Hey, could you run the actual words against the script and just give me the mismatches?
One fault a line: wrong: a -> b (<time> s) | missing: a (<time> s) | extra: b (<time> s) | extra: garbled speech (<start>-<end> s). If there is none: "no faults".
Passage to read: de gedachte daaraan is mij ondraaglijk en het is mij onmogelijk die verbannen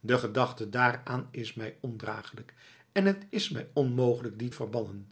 no faults